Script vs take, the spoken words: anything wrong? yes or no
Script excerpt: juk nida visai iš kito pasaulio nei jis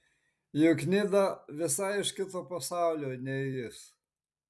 no